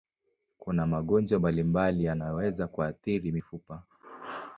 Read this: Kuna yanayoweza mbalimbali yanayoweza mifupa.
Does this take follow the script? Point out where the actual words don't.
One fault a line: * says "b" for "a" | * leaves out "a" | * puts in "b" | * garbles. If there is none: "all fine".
* says "magonjwa" for "yanayoweza"
* puts in "kuathiri"